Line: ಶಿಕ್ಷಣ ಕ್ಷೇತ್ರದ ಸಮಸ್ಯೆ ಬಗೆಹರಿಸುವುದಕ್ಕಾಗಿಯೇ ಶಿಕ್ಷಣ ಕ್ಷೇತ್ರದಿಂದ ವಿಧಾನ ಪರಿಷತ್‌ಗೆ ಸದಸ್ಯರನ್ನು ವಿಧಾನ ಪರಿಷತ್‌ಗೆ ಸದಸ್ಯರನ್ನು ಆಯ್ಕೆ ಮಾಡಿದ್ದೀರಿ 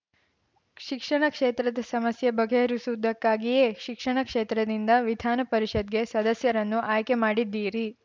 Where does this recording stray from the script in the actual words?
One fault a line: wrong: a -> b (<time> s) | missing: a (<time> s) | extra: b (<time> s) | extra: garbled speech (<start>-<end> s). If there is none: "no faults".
missing: ವಿಧಾನ ಪರಿಷತ್‌ಗೆ ಸದಸ್ಯರನ್ನು (6.8 s)